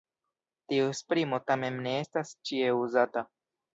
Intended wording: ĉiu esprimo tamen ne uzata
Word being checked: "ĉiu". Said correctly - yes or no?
no